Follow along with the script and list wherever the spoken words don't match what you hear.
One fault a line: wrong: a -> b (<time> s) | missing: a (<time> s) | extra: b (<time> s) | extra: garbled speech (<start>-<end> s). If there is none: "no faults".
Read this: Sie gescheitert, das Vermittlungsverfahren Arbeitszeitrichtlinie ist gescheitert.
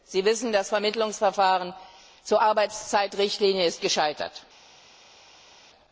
wrong: gescheitert -> wissen (0.2 s)
extra: zur (2.2 s)